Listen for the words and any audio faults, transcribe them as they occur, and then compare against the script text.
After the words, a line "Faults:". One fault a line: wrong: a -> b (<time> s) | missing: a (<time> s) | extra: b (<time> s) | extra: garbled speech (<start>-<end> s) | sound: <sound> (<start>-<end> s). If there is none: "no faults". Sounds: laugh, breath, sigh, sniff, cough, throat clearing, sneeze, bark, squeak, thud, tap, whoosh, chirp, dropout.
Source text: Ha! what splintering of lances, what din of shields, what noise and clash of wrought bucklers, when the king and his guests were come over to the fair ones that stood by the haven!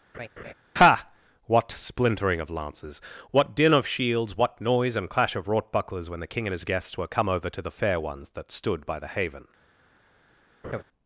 Ha! what splintering of lances, what din of shields, what noise and clash of wrought bucklers, when the king and his guests were come over to the fair ones that stood by the haven!
Faults:
sound: laugh (0.1-0.5 s)
sound: laugh (10.6-10.8 s)